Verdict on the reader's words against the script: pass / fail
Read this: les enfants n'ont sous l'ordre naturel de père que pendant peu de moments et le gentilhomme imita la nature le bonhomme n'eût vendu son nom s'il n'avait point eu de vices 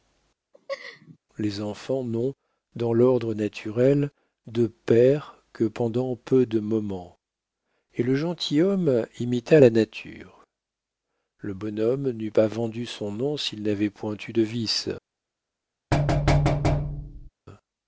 fail